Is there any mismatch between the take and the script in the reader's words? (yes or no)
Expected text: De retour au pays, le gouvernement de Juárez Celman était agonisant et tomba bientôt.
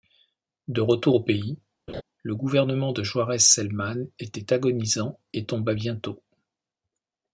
no